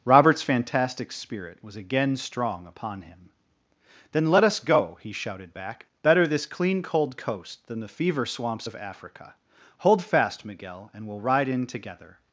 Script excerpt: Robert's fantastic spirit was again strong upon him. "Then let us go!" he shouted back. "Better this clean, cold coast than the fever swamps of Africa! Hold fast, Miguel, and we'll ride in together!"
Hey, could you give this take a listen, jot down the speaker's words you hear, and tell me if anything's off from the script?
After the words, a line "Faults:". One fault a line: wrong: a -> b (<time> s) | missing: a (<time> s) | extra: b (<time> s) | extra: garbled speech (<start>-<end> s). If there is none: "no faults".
Robert's fantastic spirit was again strong upon him. "Then let us go!" he shouted back. "Better this clean, cold coast than the fever swamps of Africa! Hold fast, Miguel, and we'll ride in together!"
Faults:
no faults